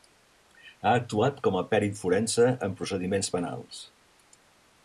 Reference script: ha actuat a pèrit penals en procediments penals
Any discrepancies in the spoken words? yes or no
yes